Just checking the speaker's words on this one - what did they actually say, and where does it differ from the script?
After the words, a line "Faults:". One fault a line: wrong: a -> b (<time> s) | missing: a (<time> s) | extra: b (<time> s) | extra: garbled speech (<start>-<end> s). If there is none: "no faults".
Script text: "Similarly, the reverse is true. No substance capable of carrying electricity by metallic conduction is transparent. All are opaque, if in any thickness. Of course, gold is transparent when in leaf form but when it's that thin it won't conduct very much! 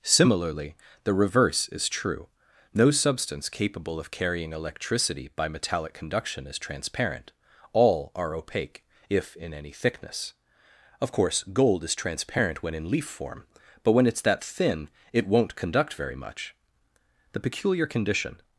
"Similarly, the reverse is true. No substance capable of carrying electricity by metallic conduction is transparent. All are opaque, if in any thickness. Of course, gold is transparent when in leaf form but when it's that thin it won't conduct very much! The peculiar condition
Faults:
extra: The peculiar condition (17.3 s)